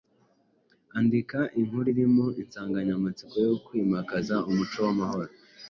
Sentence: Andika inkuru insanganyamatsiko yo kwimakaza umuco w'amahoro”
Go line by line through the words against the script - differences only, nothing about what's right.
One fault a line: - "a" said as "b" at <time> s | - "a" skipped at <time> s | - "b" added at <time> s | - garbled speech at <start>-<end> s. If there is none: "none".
- "irimo" added at 1.9 s